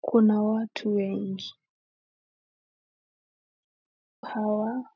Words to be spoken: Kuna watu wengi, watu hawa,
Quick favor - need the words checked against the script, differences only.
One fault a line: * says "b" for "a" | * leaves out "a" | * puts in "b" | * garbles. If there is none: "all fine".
* leaves out "watu"